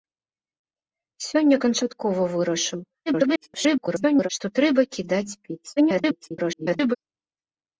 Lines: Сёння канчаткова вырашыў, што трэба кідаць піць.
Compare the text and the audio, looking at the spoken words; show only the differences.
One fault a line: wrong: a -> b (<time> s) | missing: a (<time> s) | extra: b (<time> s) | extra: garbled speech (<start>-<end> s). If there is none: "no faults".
extra: garbled speech (3.1-4.3 s)
extra: garbled speech (5.8-7.0 s)